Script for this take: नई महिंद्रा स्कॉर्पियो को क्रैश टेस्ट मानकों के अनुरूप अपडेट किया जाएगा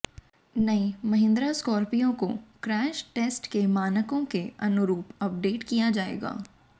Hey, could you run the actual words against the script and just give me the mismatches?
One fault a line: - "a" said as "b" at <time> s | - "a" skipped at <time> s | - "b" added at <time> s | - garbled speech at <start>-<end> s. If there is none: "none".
- "के" added at 3.5 s